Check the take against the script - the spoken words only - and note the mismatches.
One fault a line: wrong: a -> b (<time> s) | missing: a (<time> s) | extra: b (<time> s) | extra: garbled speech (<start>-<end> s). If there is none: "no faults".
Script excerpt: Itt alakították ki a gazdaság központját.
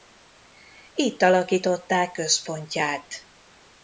missing: ki a gazdaság (2.1 s)